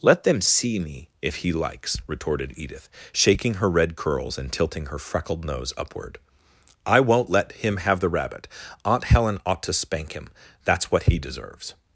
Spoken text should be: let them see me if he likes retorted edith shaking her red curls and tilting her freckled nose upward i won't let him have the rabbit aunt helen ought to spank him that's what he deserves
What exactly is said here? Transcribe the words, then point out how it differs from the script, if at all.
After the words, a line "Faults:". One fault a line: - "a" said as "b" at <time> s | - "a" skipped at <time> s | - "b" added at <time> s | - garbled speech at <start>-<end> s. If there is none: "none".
let them see me if he likes retorted edith shaking her red curls and tilting her freckled nose upward i won't let him have the rabbit aunt helen ought to spank him that's what he deserves
Faults:
none